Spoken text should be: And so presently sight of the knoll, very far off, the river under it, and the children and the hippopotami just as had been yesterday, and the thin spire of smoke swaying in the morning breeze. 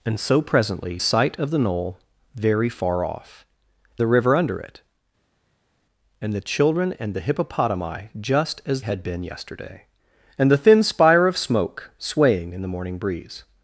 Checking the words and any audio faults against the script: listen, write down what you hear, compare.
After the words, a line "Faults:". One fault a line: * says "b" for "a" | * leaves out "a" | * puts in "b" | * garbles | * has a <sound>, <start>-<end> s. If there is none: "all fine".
And so presently sight of the knoll, very far off, the river under it, and the children and the hippopotami just as had been yesterday, and the thin spire of smoke swaying in the morning breeze.
Faults:
all fine